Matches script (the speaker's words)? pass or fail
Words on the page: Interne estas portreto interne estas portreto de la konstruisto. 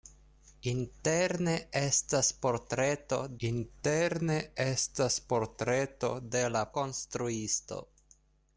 pass